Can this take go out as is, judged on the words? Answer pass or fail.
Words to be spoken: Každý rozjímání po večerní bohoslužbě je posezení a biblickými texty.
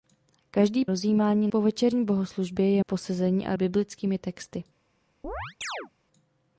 pass